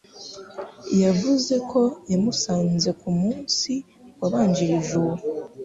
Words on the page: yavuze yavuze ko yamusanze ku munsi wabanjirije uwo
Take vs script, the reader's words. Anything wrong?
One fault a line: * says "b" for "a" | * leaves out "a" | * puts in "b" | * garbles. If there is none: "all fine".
* leaves out "yavuze"